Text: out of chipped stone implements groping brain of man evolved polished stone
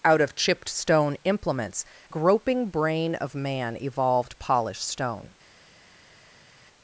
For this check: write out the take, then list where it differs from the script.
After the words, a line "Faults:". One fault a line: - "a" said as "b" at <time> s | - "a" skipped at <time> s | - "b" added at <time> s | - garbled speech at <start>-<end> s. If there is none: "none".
out of chipped stone implements groping brain of man evolved polished stone
Faults:
none